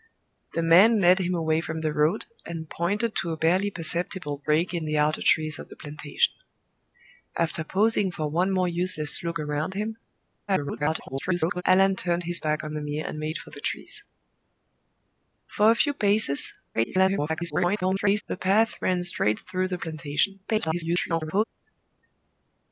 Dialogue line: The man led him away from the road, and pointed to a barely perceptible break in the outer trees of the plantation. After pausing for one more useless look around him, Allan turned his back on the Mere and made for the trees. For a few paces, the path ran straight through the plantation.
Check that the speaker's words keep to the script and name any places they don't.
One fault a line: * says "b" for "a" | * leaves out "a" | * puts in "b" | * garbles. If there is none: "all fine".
* garbles
* garbles
* garbles